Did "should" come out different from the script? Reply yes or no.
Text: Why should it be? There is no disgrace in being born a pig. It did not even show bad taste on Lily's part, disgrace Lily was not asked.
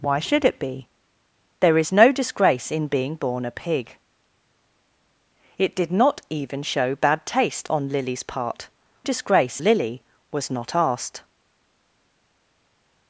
no